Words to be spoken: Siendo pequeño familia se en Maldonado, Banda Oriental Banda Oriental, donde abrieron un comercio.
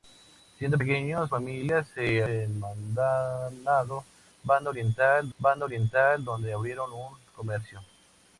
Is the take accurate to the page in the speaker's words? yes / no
yes